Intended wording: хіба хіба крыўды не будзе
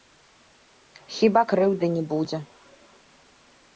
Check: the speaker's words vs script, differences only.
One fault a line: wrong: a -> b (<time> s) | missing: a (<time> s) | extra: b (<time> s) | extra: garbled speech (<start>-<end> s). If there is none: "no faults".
missing: хіба (1.4 s)